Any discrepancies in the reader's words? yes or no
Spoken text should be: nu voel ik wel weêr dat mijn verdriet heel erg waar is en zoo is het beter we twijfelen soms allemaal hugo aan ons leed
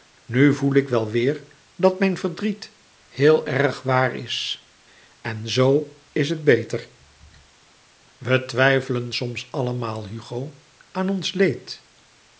no